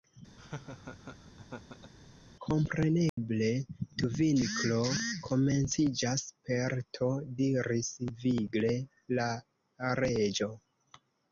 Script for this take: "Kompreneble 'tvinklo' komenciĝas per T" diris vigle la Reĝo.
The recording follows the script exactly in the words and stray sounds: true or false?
false